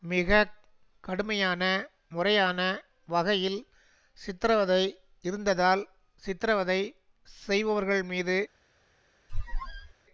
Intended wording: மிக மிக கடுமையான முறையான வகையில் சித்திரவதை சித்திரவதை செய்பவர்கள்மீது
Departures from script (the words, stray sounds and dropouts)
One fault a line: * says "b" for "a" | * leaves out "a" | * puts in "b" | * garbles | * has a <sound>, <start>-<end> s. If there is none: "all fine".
* leaves out "மிக"
* puts in "இருந்ததால்"
* has a squeak, 9.3-9.9 s